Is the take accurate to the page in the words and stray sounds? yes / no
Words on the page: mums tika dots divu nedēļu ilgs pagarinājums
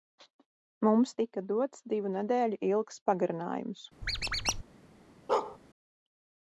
no